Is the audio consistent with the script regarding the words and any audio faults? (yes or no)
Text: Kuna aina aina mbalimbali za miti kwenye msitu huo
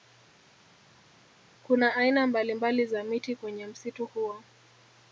no